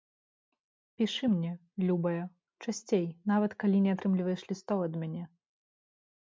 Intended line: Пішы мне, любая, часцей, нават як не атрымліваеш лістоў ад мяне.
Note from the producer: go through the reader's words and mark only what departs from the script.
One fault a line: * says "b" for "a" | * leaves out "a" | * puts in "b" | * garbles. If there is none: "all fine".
* says "калі" for "як"